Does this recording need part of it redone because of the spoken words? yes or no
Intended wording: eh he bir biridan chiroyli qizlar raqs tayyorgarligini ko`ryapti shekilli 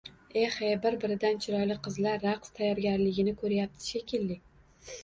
no